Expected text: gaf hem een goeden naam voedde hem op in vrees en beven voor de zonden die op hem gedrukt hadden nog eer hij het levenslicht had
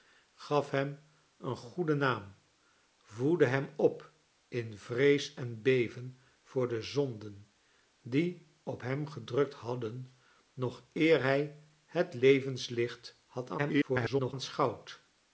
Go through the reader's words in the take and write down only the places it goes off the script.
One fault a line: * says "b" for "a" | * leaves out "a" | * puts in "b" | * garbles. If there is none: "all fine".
* garbles